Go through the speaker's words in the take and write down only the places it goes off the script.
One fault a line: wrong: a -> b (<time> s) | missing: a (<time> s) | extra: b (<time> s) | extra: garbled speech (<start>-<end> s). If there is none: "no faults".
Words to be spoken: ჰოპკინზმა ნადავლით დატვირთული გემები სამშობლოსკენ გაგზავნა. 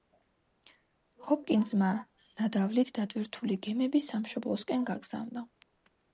no faults